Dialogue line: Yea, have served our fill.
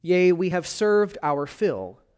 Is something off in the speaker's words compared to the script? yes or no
yes